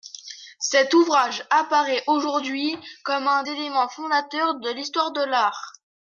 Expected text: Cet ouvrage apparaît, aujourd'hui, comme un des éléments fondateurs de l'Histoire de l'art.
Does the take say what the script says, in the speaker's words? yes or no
no